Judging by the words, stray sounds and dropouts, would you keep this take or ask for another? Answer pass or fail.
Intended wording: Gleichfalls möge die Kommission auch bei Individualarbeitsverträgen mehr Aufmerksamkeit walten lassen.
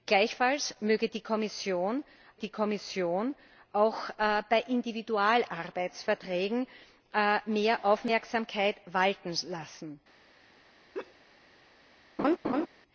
fail